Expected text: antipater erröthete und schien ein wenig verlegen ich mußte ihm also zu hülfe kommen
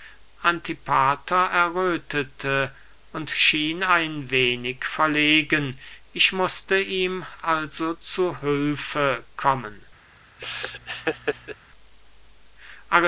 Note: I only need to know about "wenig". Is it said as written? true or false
true